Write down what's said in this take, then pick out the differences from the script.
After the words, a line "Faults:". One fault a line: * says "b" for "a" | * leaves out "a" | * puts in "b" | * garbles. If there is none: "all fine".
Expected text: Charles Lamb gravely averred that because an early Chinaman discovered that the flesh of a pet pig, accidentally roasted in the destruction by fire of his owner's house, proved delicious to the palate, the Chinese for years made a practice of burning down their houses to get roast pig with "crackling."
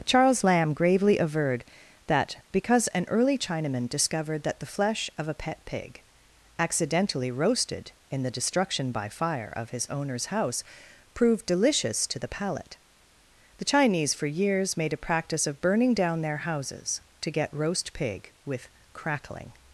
Charles Lamb gravely averred that because an early Chinaman discovered that the flesh of a pet pig, accidentally roasted in the destruction by fire of his owner's house, proved delicious to the palate, the Chinese for years made a practice of burning down their houses to get roast pig with "crackling."
Faults:
all fine